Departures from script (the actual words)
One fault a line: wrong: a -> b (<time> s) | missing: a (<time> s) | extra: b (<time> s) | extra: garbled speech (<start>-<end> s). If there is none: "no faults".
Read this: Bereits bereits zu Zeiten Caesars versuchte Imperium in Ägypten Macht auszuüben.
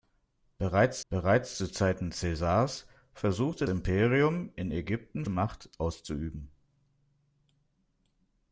no faults